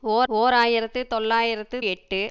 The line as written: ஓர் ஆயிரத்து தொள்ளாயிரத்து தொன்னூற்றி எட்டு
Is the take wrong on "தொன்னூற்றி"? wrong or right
wrong